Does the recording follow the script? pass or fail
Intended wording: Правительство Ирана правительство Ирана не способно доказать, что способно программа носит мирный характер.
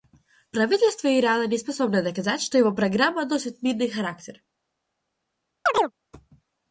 fail